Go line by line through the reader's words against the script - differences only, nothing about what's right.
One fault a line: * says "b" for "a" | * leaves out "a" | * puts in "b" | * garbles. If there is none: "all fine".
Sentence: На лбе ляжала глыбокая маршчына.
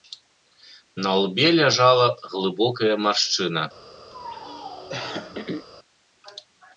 all fine